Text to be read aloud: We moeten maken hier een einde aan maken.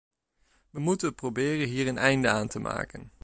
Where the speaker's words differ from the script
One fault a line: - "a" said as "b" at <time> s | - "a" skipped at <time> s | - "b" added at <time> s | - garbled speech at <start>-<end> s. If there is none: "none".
- "maken" said as "proberen" at 1.1 s
- "te" added at 2.5 s